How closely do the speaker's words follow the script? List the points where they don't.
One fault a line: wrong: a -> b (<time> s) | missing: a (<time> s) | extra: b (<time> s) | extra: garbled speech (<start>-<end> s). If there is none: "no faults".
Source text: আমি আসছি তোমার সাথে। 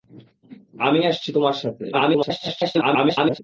extra: garbled speech (1.9-3.4 s)